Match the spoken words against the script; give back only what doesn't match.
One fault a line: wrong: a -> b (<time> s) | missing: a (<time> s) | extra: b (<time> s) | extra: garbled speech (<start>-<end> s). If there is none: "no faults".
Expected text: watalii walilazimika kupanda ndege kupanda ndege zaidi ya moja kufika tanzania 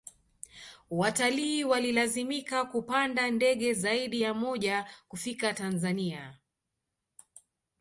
missing: kupanda ndege (3.7 s)